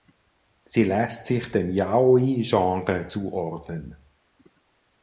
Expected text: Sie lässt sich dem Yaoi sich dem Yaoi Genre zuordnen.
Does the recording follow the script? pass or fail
fail